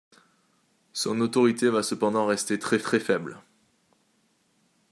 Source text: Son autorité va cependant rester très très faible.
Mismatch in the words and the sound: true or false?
false